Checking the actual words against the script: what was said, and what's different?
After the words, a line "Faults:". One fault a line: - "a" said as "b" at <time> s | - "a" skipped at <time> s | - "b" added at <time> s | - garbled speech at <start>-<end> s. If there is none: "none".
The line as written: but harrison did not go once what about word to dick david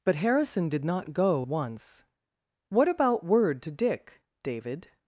but harrison did not go once what about word to dick david
Faults:
none